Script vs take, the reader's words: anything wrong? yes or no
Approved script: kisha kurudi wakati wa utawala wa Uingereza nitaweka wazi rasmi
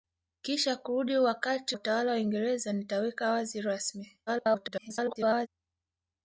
yes